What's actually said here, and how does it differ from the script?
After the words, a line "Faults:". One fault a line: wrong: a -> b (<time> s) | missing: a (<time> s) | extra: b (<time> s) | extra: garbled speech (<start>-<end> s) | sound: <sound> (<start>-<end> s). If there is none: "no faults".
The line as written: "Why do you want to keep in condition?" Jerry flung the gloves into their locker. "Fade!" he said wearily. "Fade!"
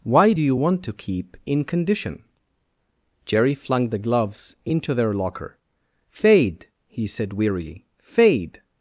"Why do you want to keep in condition?" Jerry flung the gloves into their locker. "Fade!" he said wearily. "Fade!"
Faults:
no faults